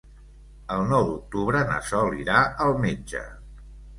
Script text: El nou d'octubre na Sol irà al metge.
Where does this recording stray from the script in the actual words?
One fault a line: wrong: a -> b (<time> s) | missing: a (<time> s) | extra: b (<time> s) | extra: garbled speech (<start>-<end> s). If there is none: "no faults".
no faults